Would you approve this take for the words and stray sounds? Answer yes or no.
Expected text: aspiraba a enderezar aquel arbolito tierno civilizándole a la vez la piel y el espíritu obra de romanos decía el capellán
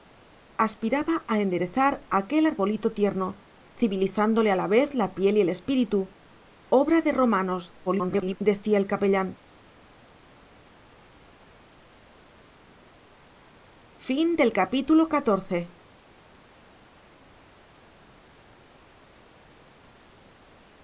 no